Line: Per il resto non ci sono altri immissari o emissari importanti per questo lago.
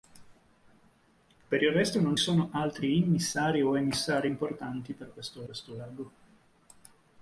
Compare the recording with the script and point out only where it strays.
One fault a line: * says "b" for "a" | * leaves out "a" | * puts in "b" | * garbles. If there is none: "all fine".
* leaves out "ci"
* puts in "questo"